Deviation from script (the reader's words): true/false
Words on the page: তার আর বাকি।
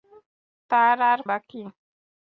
false